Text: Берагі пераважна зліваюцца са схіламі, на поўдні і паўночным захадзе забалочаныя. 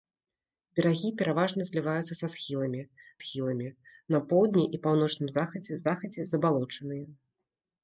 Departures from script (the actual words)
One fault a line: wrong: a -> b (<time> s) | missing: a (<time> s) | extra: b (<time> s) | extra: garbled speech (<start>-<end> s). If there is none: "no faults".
extra: схіламі (3.2 s)
extra: захадзе (5.9 s)